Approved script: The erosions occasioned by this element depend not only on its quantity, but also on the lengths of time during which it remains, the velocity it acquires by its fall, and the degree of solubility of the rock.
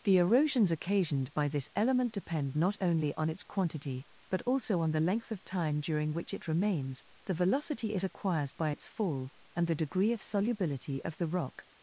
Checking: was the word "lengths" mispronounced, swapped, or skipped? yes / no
yes